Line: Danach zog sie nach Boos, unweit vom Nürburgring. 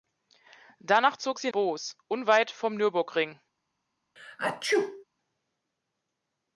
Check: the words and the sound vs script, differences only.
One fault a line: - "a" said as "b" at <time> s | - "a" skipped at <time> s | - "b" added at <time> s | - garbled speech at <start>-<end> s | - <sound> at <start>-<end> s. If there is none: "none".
- "nach" skipped at 1.5 s
- sneeze at 4.2-5.0 s